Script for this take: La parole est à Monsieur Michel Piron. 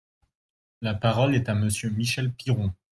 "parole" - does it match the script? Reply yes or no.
yes